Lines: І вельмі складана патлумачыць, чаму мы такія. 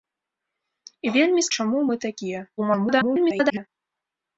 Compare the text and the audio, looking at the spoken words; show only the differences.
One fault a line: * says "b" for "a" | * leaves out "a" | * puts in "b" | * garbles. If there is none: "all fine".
* leaves out "складана патлумачыць"
* garbles